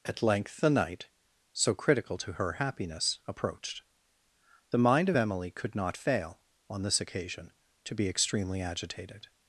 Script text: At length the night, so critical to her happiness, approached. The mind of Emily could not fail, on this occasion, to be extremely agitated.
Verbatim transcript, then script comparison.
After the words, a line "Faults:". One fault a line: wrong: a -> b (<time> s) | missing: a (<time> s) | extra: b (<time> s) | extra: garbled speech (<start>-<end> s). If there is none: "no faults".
At length the night, so critical to her happiness, approached. The mind of Emily could not fail, on this occasion, to be extremely agitated.
Faults:
no faults